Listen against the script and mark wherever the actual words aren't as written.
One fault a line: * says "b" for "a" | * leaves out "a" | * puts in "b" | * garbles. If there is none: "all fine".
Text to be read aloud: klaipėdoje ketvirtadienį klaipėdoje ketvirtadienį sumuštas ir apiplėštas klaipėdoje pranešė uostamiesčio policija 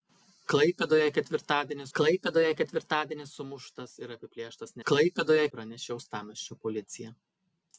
all fine